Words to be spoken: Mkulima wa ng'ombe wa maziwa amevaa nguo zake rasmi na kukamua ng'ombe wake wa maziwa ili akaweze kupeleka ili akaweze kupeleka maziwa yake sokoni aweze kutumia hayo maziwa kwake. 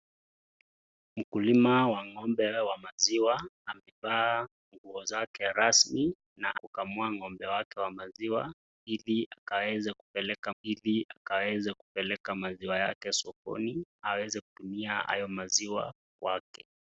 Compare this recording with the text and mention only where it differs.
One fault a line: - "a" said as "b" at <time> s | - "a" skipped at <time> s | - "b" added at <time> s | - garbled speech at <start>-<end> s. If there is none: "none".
none